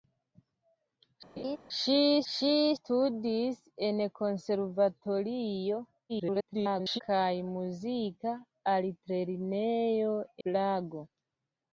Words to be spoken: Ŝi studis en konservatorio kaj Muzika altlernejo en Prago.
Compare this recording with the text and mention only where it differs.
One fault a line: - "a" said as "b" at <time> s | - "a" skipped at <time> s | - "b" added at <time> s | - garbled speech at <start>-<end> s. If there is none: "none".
- "ŝi" added at 2.3 s
- garbled speech at 6.1-7.0 s
- "en" skipped at 10.2 s